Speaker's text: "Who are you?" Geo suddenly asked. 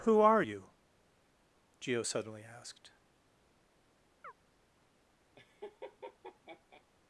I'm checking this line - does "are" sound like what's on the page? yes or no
yes